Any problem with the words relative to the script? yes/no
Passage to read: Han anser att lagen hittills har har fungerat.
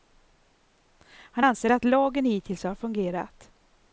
yes